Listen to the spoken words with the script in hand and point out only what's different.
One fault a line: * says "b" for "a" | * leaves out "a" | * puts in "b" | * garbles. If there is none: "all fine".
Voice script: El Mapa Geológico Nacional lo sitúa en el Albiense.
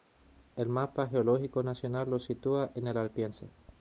all fine